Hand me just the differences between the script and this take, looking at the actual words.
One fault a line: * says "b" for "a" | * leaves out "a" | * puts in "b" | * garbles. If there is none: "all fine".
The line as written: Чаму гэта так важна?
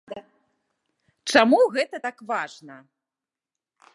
all fine